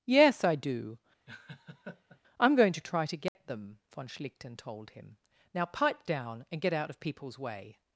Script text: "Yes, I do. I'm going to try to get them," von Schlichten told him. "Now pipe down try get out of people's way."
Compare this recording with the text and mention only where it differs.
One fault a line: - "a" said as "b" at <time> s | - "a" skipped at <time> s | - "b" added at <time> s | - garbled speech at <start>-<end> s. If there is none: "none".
- "try" said as "and" at 6.5 s